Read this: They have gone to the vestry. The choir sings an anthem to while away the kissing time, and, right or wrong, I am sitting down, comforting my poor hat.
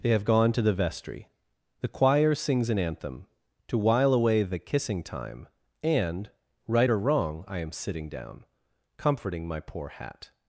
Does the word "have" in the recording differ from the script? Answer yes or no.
no